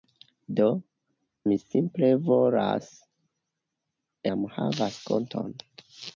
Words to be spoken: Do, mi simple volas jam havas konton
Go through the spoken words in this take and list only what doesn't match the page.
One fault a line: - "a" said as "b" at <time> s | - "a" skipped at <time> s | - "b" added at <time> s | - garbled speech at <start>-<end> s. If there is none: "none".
none